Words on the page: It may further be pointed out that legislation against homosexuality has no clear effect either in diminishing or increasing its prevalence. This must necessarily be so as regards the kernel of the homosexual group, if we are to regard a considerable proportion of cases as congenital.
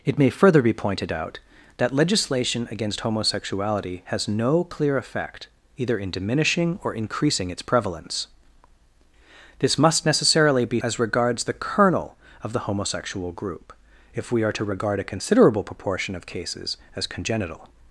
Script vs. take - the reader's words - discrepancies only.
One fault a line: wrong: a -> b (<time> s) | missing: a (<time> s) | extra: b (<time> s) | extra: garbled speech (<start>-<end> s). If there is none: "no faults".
missing: so (10.8 s)